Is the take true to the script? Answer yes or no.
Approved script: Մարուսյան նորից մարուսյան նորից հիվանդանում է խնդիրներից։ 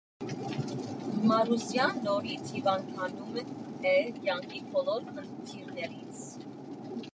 no